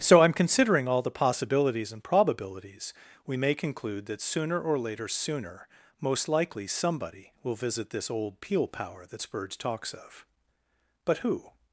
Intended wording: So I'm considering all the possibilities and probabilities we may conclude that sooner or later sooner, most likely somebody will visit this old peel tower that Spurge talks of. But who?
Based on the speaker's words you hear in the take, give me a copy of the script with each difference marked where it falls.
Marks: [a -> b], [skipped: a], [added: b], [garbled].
So I'm considering all the possibilities and probabilities we may conclude that sooner or later sooner, most likely somebody will visit this old peel [tower -> power] that Spurge talks of. But who?